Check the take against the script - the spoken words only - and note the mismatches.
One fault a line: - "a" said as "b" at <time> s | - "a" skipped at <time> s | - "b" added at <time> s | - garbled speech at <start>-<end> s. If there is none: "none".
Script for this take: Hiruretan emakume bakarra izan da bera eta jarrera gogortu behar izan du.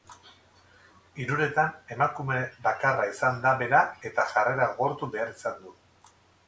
none